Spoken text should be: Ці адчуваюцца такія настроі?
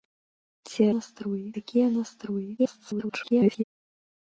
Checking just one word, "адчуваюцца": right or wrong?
wrong